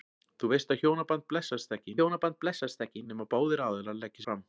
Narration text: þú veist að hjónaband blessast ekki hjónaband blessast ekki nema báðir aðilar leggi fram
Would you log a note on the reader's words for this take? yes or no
no